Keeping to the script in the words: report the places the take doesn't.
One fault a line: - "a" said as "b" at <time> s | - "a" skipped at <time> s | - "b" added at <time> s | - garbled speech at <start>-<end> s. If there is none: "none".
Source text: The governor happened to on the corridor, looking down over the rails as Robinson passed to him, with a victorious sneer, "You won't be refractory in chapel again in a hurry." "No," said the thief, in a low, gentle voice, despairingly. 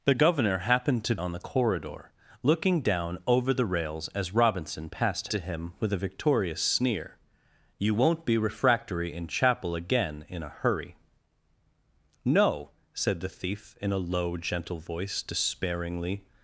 none